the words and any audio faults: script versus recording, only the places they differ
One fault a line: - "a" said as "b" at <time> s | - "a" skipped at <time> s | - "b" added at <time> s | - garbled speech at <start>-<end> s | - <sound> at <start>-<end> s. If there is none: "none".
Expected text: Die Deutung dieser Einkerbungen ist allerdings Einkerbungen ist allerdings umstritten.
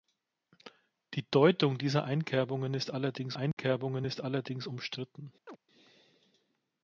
- dropout at 3.5-3.6 s
- chirp at 5.5-5.6 s